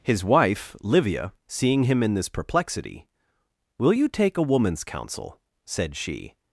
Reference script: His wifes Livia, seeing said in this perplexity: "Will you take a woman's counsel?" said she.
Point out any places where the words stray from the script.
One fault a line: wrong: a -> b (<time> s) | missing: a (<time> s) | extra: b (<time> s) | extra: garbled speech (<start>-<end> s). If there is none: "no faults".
wrong: wifes -> wife (0.2 s)
wrong: said -> him (1.8 s)